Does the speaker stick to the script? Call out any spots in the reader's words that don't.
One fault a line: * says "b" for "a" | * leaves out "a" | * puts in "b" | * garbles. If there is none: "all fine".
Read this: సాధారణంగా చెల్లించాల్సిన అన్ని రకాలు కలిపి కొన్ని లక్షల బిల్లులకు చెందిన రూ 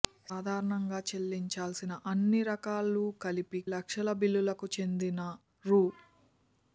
* leaves out "కొన్ని"